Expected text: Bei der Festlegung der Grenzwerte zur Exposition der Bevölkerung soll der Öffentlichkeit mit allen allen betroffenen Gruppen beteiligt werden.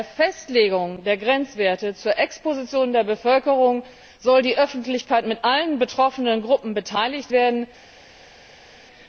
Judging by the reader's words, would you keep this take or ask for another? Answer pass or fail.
fail